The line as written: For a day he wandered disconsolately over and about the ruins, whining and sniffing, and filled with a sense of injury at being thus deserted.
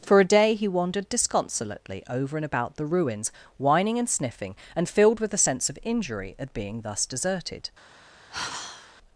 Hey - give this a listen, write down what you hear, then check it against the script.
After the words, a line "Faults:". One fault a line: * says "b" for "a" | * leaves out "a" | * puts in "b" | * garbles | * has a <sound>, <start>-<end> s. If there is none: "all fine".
For a day he wandered disconsolately over and about the ruins, whining and sniffing, and filled with a sense of injury at being thus deserted.
Faults:
* has a sigh, 8.3-8.9 s